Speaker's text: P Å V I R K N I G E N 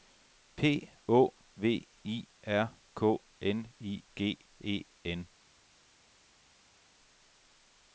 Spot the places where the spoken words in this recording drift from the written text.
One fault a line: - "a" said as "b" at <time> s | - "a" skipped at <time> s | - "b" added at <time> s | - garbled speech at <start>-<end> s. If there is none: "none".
none